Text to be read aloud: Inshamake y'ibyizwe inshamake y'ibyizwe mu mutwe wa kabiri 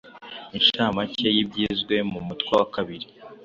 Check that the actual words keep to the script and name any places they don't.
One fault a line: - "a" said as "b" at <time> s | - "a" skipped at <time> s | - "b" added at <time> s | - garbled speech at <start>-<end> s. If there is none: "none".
- "inshamake y'ibyizwe" skipped at 1.9 s